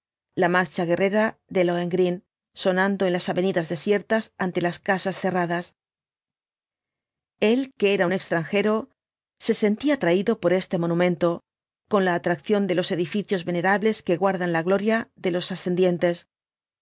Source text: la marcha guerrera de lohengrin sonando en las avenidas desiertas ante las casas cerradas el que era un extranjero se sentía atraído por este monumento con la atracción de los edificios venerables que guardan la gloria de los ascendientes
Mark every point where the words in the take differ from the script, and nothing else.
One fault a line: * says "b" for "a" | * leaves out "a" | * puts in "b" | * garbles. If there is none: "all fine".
all fine